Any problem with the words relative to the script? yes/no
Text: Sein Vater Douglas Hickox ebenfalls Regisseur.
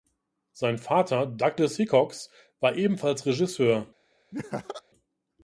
yes